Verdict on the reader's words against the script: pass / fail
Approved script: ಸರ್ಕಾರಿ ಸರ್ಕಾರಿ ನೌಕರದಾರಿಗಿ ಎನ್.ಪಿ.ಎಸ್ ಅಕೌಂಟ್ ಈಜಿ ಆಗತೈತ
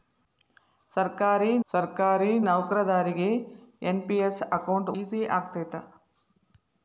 pass